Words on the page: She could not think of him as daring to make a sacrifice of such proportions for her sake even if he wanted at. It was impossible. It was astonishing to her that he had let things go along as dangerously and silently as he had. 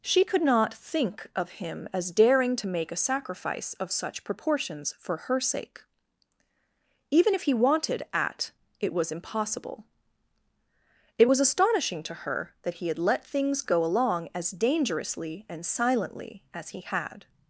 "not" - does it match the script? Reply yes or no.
yes